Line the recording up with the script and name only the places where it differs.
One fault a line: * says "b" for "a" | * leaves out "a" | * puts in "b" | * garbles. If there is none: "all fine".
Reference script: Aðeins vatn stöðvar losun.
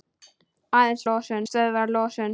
* says "losun" for "vatn"